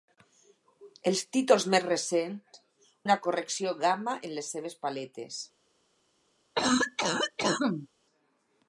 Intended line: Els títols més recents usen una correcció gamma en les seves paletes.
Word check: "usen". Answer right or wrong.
wrong